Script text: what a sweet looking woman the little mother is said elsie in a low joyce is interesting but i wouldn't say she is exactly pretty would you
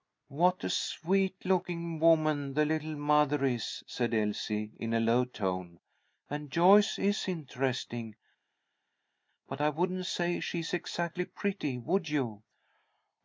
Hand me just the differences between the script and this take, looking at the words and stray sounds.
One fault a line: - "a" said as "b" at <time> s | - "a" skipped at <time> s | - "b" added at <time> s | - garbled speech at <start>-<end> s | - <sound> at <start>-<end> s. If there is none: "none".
- "tone and" added at 5.2 s